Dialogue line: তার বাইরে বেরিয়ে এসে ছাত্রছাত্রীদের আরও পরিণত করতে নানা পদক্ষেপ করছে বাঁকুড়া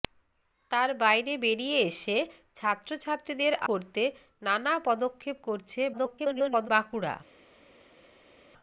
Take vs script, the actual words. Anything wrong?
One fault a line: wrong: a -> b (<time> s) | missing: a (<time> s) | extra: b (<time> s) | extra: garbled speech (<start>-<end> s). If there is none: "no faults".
missing: আরও পরিণত (3.5 s)
extra: garbled speech (5.9-6.7 s)